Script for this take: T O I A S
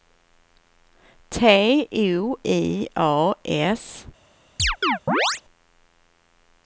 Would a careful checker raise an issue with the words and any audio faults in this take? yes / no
yes